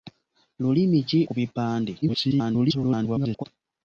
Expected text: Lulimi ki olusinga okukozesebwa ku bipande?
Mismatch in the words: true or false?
true